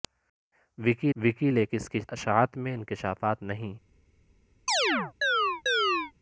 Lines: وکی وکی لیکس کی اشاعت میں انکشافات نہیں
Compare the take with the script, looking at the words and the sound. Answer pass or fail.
fail